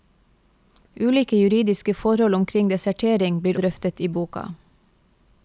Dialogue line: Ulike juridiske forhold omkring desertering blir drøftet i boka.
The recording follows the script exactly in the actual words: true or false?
true